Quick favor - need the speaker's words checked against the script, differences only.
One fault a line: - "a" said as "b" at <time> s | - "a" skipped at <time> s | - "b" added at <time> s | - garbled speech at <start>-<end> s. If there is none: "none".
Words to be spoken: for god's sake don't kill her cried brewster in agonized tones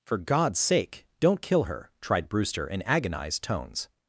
- "cried" said as "tried" at 2.0 s